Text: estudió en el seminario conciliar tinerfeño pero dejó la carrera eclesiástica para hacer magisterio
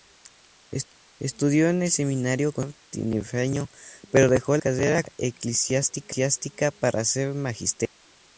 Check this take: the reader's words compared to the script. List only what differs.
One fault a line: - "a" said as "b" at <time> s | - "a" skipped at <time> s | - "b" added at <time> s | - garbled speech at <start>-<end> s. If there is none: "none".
- "la" skipped at 4.6 s